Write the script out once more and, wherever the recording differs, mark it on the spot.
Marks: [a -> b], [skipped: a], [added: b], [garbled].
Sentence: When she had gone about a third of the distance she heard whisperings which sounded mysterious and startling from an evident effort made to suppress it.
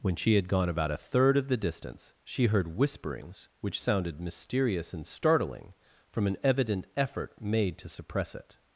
When she had gone about a third of the distance she heard whisperings which sounded mysterious and startling from an evident effort made to suppress it.